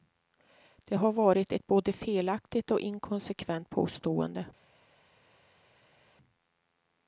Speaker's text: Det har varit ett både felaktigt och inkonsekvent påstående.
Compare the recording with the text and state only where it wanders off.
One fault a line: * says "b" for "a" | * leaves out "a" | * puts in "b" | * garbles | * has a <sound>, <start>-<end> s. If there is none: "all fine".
all fine